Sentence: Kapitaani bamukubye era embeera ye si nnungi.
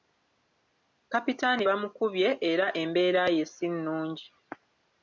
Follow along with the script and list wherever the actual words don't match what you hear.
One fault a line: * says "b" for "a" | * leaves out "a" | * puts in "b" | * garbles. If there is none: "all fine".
all fine